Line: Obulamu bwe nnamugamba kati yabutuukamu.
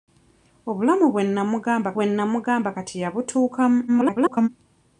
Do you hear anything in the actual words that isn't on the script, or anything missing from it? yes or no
yes